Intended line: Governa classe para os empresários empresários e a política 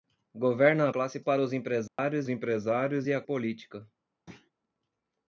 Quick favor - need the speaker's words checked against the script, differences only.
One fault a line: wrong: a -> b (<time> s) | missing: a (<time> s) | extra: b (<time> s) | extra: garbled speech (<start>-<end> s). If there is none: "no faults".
no faults